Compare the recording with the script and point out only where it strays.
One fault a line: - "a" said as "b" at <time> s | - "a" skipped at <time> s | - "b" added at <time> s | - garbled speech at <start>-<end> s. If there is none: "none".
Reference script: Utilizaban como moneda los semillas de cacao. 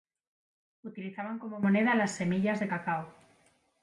- "los" said as "las" at 1.9 s